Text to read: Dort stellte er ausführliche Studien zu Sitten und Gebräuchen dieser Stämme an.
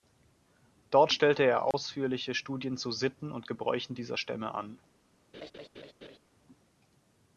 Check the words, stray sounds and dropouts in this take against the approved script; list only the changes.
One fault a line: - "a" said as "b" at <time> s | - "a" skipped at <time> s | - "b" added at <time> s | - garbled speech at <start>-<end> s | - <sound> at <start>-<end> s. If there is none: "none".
- dropout at 1.7-1.7 s
- laugh at 5.3-6.2 s